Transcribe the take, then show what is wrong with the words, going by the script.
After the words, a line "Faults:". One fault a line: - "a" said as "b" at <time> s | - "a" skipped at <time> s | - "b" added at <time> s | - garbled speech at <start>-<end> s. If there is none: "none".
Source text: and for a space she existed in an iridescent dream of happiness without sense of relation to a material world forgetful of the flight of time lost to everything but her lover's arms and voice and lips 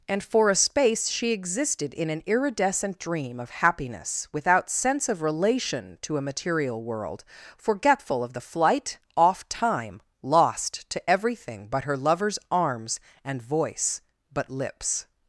and for a space she existed in an iridescent dream of happiness without sense of relation to a material world forgetful of the flight off time lost to everything but her lover's arms and voice but lips
Faults:
- "of" said as "off" at 9.2 s
- "and" said as "but" at 14.3 s